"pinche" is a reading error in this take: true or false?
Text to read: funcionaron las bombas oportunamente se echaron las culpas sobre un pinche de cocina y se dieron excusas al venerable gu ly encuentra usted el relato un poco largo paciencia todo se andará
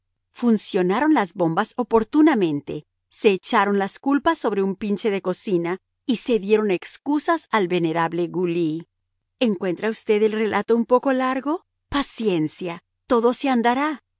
false